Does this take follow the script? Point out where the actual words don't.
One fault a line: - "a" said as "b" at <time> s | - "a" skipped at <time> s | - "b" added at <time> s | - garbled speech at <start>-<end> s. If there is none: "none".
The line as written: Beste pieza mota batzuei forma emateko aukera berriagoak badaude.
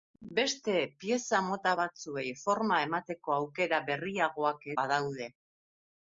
none